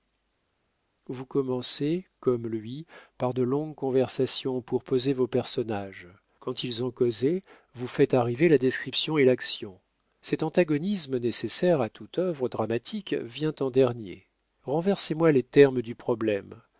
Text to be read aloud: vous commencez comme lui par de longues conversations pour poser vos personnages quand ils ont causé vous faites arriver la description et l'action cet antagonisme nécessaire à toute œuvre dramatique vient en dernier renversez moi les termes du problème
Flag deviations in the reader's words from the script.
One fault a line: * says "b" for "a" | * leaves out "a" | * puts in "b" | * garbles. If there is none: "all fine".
all fine